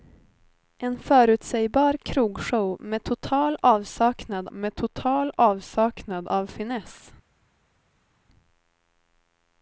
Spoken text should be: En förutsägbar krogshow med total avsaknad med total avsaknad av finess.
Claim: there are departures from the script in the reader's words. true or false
false